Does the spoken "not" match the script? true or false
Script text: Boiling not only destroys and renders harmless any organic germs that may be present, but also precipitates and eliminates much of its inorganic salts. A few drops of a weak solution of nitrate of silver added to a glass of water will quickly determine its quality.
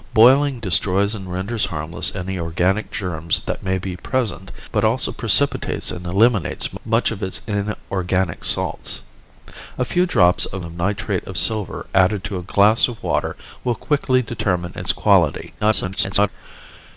false